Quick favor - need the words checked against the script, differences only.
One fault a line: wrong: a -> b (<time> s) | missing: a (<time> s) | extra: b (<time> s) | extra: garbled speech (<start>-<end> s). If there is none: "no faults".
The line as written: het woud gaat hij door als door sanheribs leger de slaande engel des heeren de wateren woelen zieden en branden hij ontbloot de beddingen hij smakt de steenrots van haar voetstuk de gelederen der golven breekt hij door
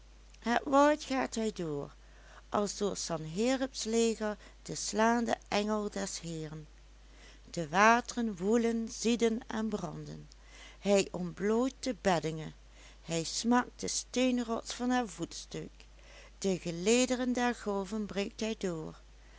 no faults